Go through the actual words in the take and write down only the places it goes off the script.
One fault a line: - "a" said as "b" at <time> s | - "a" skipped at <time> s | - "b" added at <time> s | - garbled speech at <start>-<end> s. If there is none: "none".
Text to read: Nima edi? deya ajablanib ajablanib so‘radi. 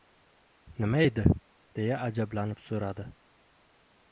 - "ajablanib" skipped at 2.6 s